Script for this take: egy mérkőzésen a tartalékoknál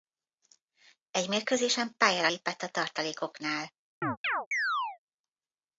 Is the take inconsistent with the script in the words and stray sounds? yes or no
yes